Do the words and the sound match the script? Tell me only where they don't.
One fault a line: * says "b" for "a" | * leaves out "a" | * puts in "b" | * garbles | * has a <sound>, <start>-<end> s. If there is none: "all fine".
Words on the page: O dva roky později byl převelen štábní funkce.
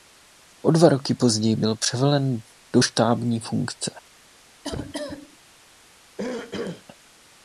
* puts in "do"
* has a cough, 4.6-5.4 s
* has a throat clearing, 6.2-6.9 s